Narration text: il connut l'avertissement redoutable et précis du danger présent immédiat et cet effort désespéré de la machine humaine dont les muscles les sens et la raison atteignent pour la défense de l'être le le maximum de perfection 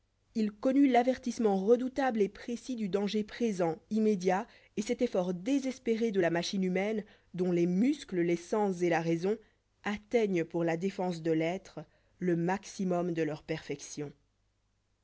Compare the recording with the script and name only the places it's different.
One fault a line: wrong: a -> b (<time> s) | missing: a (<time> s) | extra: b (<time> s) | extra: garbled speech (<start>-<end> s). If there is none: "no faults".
missing: le (12.4 s)
extra: leur (13.2 s)